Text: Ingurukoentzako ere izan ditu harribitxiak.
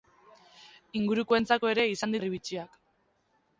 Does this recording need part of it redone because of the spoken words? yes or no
yes